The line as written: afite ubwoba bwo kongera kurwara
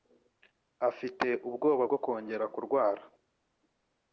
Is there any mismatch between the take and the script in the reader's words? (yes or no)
no